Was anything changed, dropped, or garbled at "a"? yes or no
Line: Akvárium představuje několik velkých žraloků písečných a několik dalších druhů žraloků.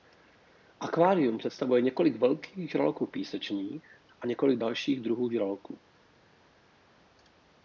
no